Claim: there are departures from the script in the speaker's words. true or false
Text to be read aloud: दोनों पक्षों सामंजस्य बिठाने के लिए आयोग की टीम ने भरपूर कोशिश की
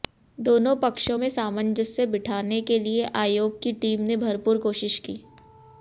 true